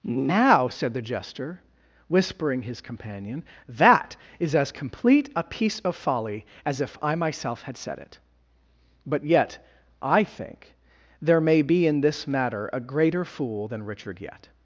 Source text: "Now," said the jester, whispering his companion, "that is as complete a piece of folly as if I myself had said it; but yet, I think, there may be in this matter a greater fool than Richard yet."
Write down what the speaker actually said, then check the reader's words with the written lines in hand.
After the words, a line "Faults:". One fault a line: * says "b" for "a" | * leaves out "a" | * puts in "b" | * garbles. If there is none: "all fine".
"Now," said the jester, whispering his companion, "that is as complete a piece of folly as if I myself had said it; but yet, I think, there may be in this matter a greater fool than Richard yet."
Faults:
all fine